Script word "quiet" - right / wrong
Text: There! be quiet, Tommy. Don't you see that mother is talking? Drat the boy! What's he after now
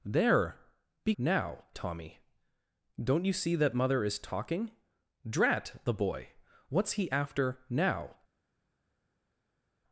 wrong